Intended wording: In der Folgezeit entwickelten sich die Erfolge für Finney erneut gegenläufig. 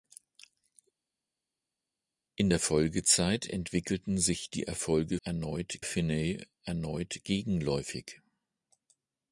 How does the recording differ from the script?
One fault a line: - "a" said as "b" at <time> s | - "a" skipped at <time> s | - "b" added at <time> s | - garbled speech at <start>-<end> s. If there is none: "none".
- "für" said as "erneut" at 5.2 s